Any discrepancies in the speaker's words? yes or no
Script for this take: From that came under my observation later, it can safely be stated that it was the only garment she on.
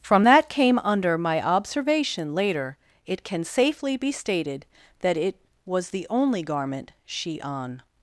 no